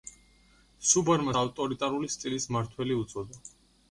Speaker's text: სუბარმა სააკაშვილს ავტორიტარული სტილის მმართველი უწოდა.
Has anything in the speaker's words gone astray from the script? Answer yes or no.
yes